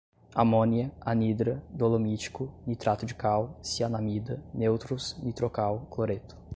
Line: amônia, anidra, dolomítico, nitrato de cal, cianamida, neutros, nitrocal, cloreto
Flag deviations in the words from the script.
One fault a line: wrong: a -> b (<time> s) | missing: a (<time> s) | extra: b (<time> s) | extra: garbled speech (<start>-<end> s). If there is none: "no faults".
no faults